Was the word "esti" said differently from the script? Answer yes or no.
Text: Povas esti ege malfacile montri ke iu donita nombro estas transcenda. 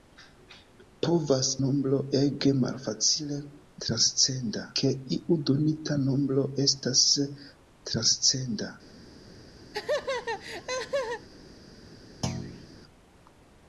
yes